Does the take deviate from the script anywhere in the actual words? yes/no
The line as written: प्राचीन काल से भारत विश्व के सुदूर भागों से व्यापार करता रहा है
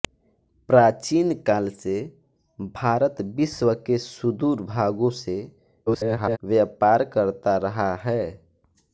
yes